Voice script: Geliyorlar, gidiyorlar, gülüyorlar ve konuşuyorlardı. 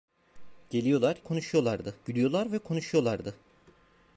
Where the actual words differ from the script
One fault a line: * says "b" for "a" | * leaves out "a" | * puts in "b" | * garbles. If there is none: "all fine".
* says "konuşuyorlardı" for "gidiyorlar"